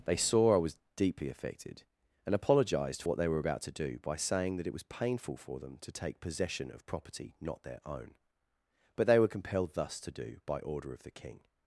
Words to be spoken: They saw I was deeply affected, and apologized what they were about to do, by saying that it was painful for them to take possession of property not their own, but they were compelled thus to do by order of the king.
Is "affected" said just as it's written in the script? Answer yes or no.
yes